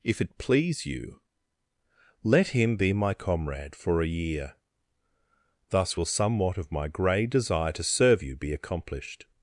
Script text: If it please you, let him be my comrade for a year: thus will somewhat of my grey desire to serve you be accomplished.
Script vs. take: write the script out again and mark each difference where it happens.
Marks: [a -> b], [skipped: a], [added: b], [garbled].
If it please you, let him be my comrade for a year: thus will somewhat of my grey desire to serve you be accomplished.